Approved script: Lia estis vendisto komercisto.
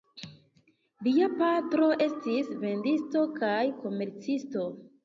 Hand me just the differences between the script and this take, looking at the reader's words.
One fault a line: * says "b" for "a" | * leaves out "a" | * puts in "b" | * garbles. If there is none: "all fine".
* puts in "patro"
* puts in "kaj"